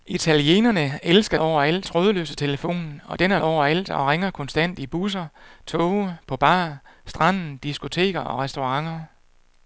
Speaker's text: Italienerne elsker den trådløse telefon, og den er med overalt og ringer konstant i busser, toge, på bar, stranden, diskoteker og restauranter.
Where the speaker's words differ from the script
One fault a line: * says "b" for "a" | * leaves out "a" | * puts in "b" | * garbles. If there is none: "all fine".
* says "overalt" for "den"
* leaves out "med"